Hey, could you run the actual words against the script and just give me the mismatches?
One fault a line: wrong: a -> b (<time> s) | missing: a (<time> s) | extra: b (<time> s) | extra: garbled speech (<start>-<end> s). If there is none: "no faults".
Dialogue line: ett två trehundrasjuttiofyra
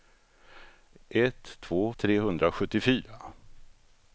no faults